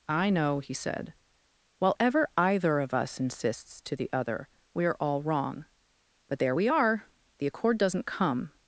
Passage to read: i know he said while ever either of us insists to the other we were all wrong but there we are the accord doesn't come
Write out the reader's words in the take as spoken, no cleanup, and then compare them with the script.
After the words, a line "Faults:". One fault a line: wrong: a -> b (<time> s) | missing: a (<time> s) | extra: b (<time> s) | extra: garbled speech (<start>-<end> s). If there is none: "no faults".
i know he said while ever either of us insists to the other we are all wrong but there we are the accord doesn't come
Faults:
wrong: were -> are (4.8 s)